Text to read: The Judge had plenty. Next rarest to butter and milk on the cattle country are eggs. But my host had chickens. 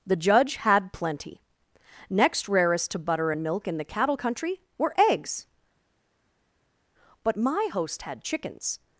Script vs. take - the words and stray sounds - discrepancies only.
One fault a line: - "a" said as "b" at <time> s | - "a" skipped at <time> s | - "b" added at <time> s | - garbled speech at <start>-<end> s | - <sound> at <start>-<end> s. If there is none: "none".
- "on" said as "in" at 3.7 s
- "are" said as "were" at 4.8 s